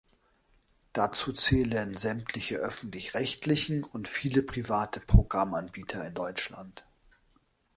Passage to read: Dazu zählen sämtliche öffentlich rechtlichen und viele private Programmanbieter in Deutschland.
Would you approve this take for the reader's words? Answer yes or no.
yes